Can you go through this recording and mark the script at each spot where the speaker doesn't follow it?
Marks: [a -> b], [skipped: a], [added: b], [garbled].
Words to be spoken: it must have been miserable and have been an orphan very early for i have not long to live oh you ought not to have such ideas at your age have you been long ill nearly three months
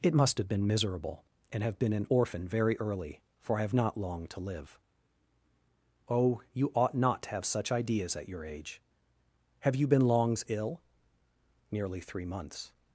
it must have been miserable and have been an orphan very early for i have not long to live oh you ought not to have such ideas at your age have you been [long -> longs] ill nearly three months